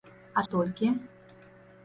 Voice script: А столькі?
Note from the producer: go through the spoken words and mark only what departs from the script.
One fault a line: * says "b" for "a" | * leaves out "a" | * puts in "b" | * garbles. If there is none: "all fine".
all fine